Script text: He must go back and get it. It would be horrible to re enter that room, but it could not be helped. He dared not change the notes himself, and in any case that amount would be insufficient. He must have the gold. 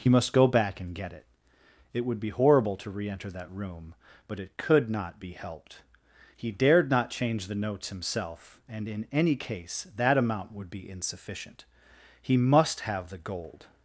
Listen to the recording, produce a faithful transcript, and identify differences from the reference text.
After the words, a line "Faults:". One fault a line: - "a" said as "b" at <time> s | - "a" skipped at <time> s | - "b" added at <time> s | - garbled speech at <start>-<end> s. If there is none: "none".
He must go back and get it. It would be horrible to re enter that room, but it could not be helped. He dared not change the notes himself, and in any case that amount would be insufficient. He must have the gold.
Faults:
none